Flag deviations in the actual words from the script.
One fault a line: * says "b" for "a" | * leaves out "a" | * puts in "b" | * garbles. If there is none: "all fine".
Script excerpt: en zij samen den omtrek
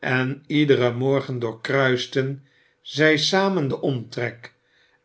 * puts in "iederen morgen doorkruisten"